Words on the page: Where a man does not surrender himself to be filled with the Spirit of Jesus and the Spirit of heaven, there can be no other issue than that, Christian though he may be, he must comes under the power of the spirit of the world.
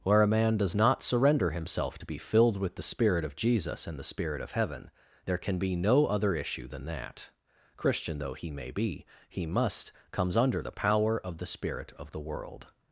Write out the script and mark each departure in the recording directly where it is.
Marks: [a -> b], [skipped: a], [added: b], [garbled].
Where a man does not surrender himself to be filled with the Spirit of Jesus and the Spirit of heaven, there can be no other issue than that, Christian though he may be, he must comes under the power of the spirit of the world.